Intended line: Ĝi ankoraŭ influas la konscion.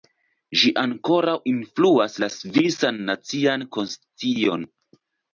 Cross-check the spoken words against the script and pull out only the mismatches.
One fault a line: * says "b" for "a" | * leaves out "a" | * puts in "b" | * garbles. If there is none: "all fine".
* puts in "svisan nacian"